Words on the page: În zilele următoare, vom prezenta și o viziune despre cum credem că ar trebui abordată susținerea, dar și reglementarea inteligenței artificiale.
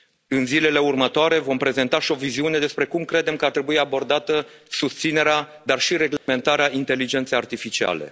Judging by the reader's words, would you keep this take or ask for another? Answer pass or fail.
pass